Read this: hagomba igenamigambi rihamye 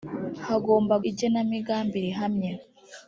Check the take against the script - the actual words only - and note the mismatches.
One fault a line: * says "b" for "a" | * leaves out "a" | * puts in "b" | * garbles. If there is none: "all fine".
all fine